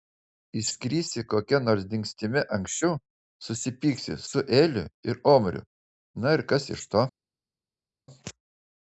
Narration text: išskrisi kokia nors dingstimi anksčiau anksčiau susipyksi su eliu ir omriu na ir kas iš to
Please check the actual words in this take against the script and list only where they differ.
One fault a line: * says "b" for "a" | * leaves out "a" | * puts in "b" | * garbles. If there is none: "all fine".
* leaves out "anksčiau"